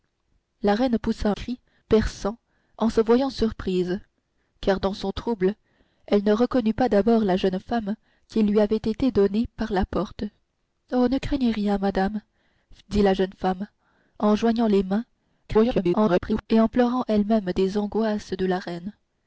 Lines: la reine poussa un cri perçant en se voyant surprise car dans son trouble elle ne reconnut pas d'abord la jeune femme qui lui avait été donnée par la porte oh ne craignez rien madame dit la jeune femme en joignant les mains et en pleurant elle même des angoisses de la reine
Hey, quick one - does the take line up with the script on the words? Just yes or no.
no